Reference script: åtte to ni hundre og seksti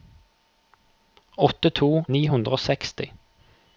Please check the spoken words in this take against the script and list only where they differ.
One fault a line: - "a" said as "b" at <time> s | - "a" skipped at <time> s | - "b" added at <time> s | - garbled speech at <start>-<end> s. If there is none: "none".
none